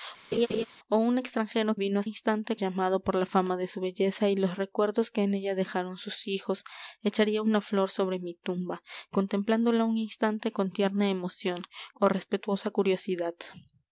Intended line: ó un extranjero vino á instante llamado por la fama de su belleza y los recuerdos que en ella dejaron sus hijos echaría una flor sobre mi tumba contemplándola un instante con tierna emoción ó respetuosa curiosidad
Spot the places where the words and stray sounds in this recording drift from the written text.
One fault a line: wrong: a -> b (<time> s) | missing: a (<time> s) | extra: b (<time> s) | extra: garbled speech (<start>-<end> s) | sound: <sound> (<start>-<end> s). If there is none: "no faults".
sound: laugh (0.3-0.7 s)